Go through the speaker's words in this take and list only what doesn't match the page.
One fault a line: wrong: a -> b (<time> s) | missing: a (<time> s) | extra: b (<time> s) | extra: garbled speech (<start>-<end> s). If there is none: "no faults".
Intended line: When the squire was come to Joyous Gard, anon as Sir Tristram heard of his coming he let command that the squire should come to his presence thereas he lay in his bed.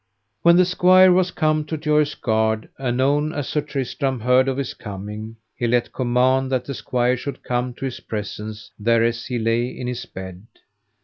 no faults